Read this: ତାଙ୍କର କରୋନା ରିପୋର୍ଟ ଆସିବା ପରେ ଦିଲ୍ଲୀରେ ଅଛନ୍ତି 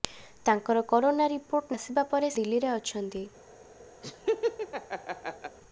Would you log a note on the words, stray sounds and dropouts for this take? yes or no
yes